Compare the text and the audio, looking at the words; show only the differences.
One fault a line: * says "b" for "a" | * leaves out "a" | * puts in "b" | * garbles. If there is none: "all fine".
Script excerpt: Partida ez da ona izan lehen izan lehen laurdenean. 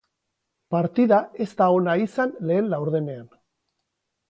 * leaves out "izan lehen"